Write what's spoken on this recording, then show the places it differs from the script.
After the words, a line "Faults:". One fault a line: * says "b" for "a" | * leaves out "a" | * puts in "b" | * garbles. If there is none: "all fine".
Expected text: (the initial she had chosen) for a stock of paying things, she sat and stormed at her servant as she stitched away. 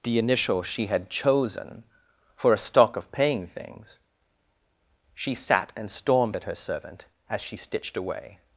(the initial she had chosen) for a stock of paying things, she sat and stormed at her servant as she stitched away.
Faults:
all fine